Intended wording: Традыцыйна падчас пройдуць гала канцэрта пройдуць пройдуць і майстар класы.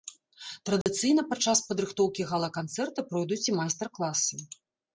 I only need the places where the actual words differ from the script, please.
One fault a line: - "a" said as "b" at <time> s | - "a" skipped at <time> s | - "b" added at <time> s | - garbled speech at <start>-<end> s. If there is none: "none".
- "пройдуць" said as "падрыхтоўкі" at 1.7 s
- "пройдуць" skipped at 3.4 s